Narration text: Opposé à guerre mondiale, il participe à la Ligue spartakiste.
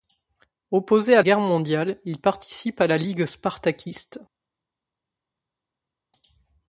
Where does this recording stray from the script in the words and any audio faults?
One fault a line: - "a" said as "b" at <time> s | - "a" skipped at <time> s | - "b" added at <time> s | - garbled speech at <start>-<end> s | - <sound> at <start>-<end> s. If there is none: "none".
none